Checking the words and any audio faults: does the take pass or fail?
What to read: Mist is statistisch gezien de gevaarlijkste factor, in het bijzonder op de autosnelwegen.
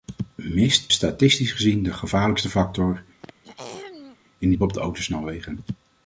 fail